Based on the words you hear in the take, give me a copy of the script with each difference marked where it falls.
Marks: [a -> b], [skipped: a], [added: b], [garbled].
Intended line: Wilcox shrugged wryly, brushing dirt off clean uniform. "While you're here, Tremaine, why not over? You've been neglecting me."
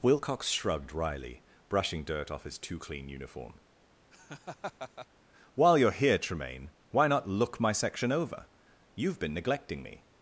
Wilcox shrugged wryly, brushing dirt off [added: his too] clean uniform. "While you're here, Tremaine, why not [added: look my section] over? You've been neglecting me."